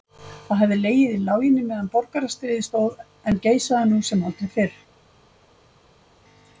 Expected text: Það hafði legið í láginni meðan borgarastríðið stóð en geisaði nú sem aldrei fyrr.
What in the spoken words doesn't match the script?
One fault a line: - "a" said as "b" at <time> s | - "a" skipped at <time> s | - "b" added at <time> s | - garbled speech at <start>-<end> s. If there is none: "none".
none